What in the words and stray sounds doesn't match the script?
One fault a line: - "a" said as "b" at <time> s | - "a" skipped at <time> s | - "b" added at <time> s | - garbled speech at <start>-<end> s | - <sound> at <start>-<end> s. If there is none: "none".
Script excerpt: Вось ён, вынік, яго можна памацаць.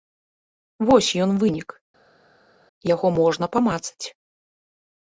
none